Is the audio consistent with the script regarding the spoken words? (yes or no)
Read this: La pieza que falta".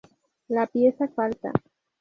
no